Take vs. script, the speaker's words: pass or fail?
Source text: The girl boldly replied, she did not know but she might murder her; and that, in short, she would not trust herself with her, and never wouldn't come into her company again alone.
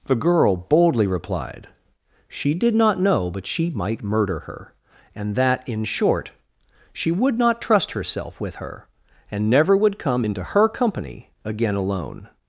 fail